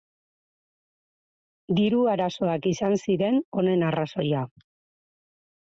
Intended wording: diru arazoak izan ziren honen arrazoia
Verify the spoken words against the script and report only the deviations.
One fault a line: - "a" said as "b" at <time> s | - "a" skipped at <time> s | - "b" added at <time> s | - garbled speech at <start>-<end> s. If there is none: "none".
none